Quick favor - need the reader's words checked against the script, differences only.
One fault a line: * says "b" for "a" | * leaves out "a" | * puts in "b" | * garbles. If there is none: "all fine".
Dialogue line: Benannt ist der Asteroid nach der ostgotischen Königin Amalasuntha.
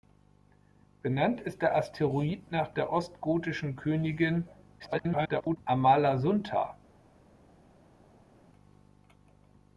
* garbles